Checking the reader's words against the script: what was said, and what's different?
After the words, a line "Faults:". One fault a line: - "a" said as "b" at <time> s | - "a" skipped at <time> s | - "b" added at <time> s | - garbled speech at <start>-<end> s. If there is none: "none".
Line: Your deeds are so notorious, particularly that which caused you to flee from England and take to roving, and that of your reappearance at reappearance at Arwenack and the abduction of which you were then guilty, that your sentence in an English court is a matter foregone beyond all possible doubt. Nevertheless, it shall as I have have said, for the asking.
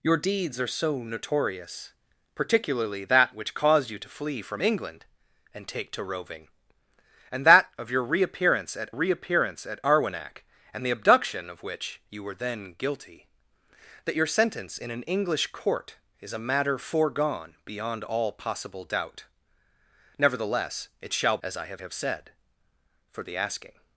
Your deeds are so notorious, particularly that which caused you to flee from England and take to roving, and that of your reappearance at reappearance at Arwenack and the abduction of which you were then guilty, that your sentence in an English court is a matter foregone beyond all possible doubt. Nevertheless, it shall as I have have said, for the asking.
Faults:
none